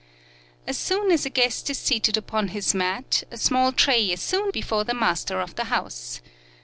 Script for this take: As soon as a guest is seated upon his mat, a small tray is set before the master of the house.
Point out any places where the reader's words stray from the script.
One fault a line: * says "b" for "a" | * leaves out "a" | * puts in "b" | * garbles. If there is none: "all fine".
* says "soon" for "set"